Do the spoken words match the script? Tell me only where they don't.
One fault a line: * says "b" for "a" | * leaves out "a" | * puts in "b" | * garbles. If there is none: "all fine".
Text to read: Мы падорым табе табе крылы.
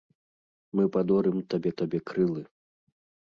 all fine